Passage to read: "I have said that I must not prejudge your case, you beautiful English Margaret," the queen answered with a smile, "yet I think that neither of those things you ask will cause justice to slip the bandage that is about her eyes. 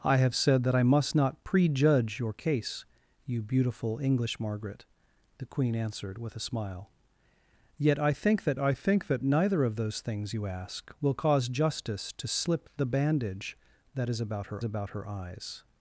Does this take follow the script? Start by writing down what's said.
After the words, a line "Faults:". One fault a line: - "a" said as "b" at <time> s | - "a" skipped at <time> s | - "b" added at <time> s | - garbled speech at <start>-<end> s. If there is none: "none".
"I have said that I must not prejudge your case, you beautiful English Margaret," the queen answered with a smile, "yet I think that I think that neither of those things you ask will cause justice to slip the bandage that is about her about her eyes.
Faults:
- "I think that" added at 8.6 s
- "about her" added at 14.6 s